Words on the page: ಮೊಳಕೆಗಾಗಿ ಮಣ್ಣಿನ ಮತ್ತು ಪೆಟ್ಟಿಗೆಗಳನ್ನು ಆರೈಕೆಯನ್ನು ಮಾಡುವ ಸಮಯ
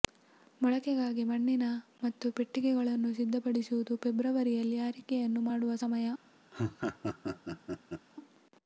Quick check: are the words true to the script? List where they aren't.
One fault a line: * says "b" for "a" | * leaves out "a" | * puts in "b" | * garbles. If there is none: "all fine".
* puts in "ಸಿದ್ಧಪಡಿಸುವುದು ಫೆಬ್ರವರಿಯಲ್ಲಿ"